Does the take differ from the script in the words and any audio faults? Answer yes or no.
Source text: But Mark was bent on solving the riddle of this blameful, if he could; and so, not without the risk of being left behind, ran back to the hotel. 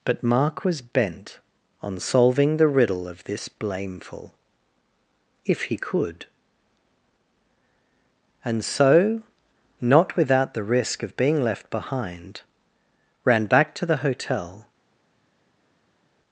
no